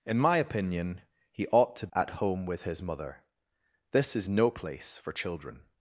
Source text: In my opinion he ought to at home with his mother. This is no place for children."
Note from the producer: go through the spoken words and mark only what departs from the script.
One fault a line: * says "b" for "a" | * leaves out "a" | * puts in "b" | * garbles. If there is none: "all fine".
all fine